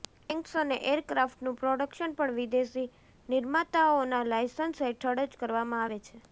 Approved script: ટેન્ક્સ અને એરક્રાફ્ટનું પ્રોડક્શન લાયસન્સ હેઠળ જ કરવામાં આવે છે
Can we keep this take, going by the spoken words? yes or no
no